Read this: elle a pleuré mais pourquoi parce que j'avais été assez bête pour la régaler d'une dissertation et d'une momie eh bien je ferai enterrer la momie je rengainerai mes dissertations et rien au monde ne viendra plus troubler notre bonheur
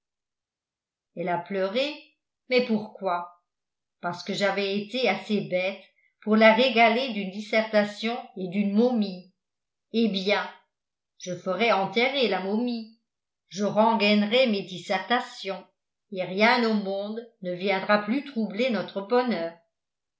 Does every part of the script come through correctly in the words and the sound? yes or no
yes